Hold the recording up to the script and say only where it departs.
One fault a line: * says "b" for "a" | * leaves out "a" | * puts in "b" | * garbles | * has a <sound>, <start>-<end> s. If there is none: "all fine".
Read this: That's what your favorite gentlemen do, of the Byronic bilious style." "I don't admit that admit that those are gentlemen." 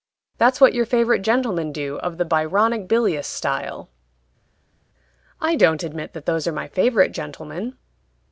* says "those are my favorite" for "admit that those are"